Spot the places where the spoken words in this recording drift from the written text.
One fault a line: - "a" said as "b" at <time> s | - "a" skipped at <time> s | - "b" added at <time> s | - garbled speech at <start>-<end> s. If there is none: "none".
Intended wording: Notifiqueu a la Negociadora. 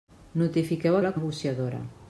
none